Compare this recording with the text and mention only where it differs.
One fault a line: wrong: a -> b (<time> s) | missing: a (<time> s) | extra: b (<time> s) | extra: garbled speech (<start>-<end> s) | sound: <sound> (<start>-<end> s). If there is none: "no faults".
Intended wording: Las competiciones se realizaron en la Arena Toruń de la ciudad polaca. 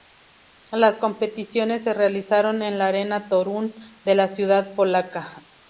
no faults